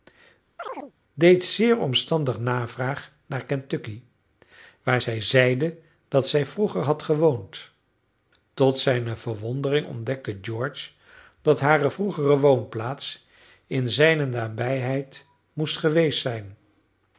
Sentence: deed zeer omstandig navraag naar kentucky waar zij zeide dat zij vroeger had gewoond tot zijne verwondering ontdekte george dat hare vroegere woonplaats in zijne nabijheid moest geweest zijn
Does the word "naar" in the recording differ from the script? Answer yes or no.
no